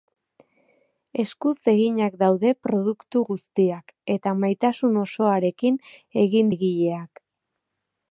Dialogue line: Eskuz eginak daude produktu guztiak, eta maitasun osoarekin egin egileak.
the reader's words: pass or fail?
pass